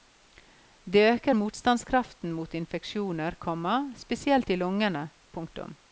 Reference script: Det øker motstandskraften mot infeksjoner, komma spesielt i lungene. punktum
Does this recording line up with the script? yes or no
yes